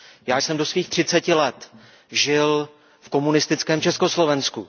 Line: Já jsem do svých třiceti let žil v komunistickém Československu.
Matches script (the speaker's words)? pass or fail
pass